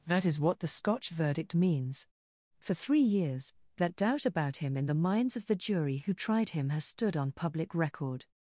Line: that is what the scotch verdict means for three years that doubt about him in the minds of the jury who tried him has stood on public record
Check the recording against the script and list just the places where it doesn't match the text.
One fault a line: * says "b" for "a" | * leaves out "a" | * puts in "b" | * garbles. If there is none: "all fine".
all fine